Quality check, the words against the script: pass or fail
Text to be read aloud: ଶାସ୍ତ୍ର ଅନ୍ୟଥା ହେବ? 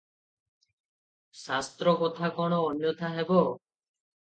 fail